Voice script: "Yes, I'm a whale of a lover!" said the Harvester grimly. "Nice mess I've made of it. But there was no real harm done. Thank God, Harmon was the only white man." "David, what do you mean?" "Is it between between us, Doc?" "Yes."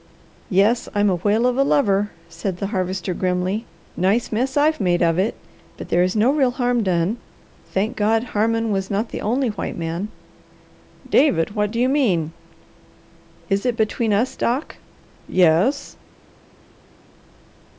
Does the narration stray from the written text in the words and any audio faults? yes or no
yes